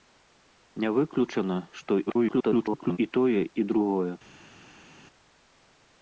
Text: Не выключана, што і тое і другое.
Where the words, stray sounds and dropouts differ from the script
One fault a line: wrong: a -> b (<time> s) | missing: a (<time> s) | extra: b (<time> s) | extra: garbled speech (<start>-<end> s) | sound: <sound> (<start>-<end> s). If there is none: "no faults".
extra: garbled speech (2.1-3.0 s)